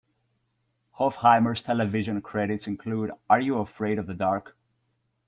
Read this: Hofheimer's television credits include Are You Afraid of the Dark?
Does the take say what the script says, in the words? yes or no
yes